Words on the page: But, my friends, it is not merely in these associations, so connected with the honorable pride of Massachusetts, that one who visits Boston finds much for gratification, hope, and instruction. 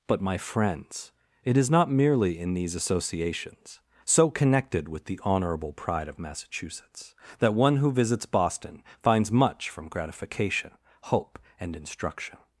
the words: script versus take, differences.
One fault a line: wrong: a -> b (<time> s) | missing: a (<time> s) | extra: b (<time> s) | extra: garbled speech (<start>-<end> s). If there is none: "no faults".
wrong: for -> from (9.7 s)